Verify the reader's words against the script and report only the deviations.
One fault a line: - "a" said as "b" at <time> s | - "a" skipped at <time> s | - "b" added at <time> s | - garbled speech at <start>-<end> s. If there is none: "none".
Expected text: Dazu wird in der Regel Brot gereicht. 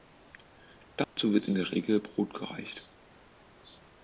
none